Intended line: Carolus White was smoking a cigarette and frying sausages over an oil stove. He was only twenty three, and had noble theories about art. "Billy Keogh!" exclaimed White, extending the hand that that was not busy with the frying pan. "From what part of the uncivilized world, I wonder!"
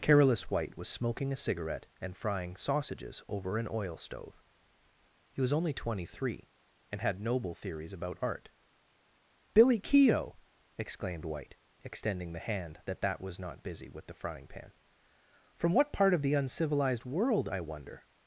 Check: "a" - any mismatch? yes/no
no